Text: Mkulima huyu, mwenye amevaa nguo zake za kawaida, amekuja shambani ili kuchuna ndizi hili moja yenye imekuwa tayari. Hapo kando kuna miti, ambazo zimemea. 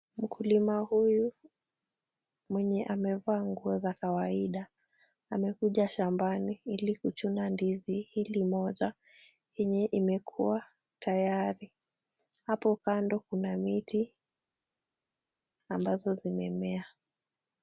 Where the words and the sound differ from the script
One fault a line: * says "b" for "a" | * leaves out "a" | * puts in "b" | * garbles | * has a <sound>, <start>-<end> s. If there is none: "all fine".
* leaves out "zake"